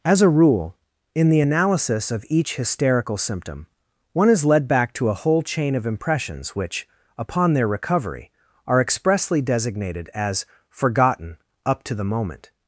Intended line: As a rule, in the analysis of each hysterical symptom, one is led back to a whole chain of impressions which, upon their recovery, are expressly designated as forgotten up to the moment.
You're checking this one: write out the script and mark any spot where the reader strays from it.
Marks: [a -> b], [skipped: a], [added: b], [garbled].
As a rule, in the analysis of each hysterical symptom, one is led back to a whole chain of impressions which, upon their recovery, are expressly designated as forgotten up to the moment.